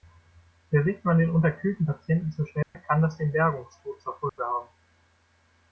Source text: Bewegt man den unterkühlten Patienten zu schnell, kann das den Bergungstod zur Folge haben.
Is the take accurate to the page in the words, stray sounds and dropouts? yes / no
no